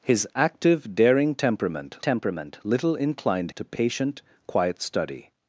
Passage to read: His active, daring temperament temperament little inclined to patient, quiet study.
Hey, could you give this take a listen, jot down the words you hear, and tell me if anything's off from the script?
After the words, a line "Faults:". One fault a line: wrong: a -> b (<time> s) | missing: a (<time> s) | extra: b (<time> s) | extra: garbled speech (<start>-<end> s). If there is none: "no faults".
His active, daring temperament temperament little inclined to patient, quiet study.
Faults:
no faults